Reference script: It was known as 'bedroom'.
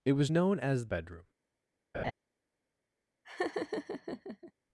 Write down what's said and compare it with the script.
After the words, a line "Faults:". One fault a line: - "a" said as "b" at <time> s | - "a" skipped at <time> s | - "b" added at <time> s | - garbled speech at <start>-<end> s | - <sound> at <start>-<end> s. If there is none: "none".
It was known as 'bedroom'.
Faults:
- laugh at 1.9-2.1 s
- laugh at 3.2-4.5 s